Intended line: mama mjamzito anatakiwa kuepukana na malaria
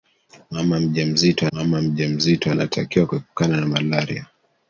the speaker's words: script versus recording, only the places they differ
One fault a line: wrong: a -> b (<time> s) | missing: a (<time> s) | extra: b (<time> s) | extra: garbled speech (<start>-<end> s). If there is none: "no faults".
extra: mama mjamzito (1.5 s)